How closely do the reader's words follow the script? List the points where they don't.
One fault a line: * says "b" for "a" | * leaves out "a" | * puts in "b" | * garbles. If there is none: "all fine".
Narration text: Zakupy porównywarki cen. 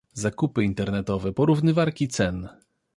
* puts in "internetowe"